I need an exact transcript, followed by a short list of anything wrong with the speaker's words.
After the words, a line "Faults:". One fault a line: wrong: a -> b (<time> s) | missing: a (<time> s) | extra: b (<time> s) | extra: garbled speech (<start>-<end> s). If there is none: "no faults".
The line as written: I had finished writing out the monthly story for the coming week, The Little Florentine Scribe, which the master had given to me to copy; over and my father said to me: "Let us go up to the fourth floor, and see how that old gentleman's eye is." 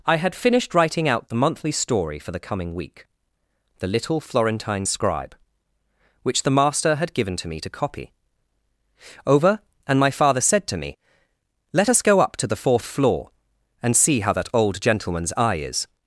I had finished writing out the monthly story for the coming week, The Little Florentine Scribe, which the master had given to me to copy; over and my father said to me: "Let us go up to the fourth floor, and see how that old gentleman's eye is."
Faults:
no faults